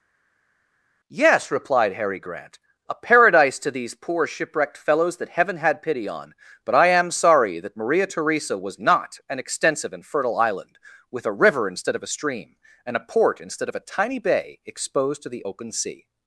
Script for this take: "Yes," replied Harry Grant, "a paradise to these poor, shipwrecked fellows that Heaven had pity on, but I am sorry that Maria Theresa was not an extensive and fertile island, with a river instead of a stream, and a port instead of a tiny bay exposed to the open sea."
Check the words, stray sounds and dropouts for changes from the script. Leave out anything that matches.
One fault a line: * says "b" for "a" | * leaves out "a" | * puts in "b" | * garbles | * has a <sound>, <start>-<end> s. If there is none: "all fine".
all fine